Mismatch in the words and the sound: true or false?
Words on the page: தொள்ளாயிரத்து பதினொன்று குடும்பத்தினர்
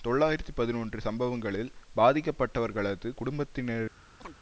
true